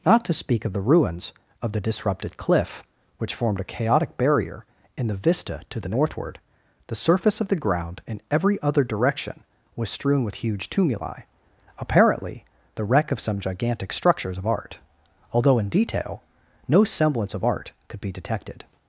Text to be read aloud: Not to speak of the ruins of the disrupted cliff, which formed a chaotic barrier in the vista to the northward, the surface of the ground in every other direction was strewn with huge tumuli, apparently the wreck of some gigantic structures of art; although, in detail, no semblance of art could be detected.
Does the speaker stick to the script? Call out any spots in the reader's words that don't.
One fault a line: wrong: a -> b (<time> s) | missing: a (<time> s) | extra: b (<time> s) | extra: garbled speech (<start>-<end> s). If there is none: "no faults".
no faults